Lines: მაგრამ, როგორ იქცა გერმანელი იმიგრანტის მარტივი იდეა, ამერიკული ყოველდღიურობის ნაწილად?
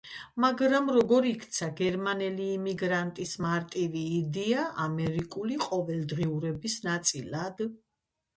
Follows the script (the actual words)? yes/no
yes